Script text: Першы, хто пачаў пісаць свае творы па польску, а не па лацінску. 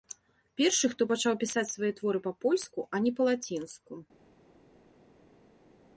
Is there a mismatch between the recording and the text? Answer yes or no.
no